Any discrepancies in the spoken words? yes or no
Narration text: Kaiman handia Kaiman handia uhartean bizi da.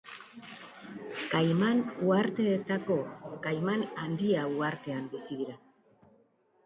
yes